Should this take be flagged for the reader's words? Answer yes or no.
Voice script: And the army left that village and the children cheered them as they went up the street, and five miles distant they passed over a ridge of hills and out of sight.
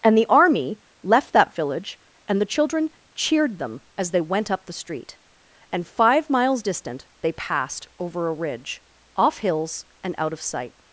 yes